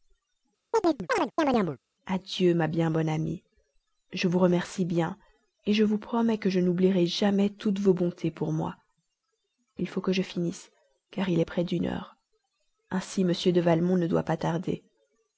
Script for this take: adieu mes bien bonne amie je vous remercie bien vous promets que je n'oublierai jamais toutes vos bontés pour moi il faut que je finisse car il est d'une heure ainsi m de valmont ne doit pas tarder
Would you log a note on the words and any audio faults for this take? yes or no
yes